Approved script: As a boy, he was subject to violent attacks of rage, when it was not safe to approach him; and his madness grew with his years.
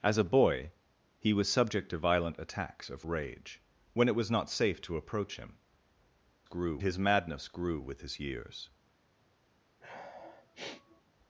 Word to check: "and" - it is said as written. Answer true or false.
false